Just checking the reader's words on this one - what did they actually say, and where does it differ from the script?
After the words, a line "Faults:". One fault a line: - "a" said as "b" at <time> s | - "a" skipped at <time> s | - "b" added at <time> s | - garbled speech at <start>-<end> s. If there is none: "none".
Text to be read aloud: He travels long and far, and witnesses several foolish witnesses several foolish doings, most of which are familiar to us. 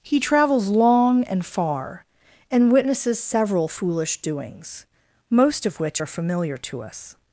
He travels long and far, and witnesses several foolish doings, most of which are familiar to us.
Faults:
- "witnesses several foolish" skipped at 4.2 s